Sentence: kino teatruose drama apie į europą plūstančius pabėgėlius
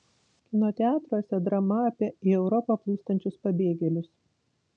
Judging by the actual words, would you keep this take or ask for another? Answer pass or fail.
pass